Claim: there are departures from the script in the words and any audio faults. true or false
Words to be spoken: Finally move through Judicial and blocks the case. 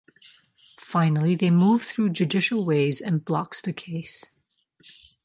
true